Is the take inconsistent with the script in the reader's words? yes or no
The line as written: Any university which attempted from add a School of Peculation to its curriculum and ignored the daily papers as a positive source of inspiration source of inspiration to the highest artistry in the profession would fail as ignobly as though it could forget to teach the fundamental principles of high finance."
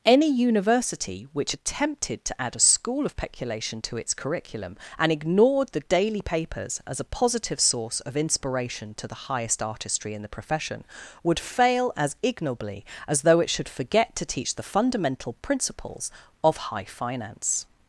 yes